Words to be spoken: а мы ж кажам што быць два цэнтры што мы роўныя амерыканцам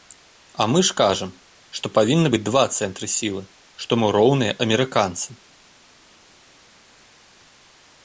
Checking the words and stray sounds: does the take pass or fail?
fail